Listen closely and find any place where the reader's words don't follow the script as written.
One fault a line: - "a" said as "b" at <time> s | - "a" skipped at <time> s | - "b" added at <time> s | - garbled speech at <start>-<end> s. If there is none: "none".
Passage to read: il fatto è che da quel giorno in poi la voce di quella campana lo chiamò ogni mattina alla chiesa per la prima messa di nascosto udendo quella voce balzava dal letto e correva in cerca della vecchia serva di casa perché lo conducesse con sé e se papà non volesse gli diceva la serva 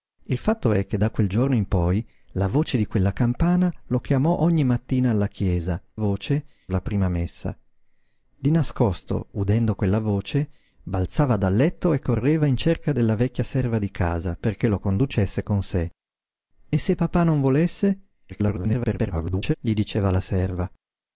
- "per" said as "voce" at 5.9 s
- garbled speech at 18.3-19.5 s